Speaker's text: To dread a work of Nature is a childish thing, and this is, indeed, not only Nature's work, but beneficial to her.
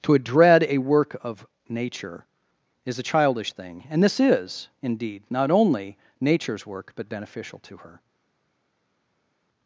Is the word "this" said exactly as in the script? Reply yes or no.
yes